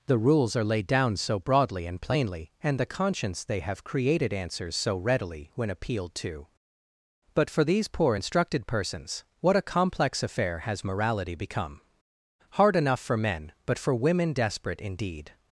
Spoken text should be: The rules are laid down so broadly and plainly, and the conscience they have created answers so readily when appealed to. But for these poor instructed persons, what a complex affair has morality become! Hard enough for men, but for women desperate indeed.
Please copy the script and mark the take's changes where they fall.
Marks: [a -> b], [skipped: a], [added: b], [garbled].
The rules are laid down so broadly and plainly, and the conscience they have created answers so readily when appealed to. But for these poor instructed persons, what a complex affair has morality become! Hard enough for men, but for women desperate indeed.